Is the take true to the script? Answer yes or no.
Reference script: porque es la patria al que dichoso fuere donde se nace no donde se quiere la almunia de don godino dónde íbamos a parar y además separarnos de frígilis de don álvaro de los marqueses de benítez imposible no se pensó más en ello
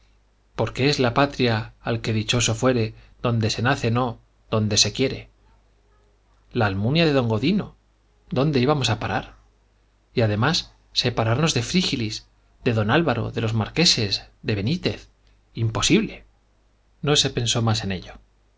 yes